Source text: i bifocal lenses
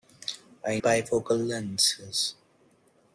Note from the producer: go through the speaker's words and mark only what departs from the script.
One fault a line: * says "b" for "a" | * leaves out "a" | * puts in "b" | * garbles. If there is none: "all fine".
all fine